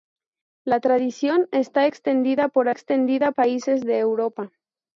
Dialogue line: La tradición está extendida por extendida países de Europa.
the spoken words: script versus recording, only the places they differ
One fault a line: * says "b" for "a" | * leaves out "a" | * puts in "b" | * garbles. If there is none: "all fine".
all fine